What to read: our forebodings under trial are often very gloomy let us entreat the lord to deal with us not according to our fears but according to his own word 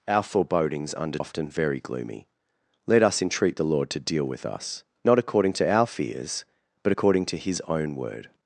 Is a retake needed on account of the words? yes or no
yes